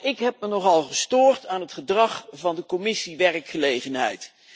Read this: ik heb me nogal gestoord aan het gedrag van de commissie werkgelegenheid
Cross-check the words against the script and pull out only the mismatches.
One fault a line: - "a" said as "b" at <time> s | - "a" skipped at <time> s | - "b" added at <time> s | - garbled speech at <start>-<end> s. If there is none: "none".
none